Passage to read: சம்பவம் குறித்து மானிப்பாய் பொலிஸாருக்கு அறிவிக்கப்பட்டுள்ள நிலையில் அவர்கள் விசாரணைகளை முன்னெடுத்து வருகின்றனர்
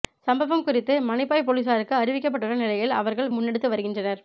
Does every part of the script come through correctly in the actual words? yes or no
no